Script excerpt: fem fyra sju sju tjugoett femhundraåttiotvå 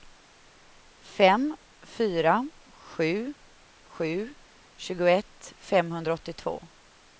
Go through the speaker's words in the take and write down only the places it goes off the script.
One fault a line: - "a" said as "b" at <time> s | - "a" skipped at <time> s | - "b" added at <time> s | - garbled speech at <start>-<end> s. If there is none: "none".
none